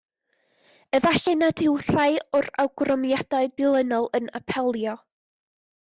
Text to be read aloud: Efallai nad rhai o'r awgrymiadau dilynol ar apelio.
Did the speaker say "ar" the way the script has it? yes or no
no